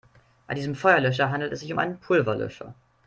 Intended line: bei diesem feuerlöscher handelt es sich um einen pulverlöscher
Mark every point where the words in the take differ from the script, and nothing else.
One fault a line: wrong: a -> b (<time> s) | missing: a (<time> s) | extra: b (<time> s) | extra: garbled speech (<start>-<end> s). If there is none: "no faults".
no faults